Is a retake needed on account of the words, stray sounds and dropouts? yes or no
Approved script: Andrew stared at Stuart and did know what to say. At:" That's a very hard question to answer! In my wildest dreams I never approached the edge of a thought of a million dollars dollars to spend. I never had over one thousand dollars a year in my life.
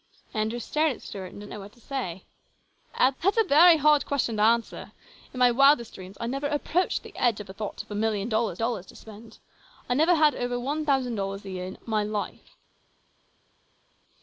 no